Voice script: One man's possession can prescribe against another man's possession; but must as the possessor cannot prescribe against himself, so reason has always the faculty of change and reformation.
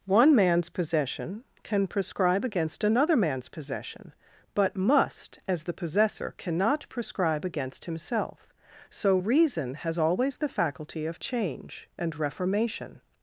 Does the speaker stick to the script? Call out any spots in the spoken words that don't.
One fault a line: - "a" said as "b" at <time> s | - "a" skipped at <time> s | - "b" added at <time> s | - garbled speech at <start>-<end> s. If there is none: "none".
none